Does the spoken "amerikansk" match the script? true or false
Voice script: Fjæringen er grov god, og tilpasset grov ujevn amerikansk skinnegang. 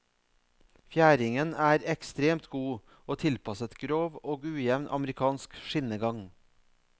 true